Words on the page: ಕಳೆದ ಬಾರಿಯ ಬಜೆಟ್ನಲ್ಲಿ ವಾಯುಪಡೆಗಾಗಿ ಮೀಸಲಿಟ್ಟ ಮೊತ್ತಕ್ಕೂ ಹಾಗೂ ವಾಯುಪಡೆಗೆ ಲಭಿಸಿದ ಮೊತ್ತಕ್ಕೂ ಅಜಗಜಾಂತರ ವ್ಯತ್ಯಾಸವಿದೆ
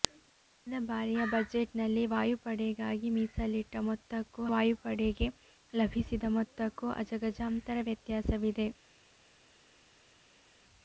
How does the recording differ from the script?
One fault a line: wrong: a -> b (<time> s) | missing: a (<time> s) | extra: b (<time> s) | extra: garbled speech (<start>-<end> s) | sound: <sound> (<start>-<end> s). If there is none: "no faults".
missing: ಹಾಗೂ (4.5 s)